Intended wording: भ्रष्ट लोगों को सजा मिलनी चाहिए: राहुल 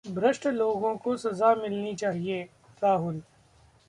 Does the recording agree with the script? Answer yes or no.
yes